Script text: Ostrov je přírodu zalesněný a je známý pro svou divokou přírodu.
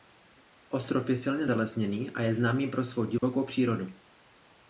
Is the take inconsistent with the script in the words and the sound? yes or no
yes